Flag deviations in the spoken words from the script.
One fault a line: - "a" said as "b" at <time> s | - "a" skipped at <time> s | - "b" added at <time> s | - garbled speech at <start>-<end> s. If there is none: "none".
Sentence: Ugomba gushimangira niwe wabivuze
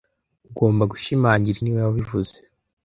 none